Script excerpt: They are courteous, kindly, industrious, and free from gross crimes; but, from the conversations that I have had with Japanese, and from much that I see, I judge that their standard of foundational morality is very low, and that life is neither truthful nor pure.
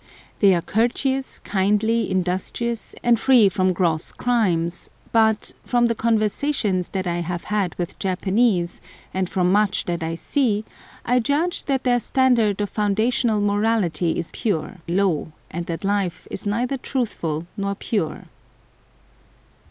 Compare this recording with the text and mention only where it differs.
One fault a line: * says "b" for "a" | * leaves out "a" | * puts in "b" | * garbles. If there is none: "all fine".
* says "pure" for "very"